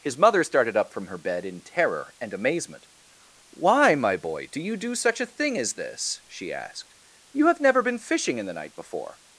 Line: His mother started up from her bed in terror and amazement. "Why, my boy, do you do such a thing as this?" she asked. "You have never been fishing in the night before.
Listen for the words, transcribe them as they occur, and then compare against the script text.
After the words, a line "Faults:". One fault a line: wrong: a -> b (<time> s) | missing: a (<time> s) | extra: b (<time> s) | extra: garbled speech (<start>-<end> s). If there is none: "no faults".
His mother started up from her bed in terror and amazement. "Why, my boy, do you do such a thing as this?" she asked. "You have never been fishing in the night before.
Faults:
no faults